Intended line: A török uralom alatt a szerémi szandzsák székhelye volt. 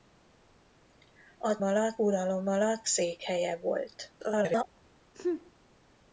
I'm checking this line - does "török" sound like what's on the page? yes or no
no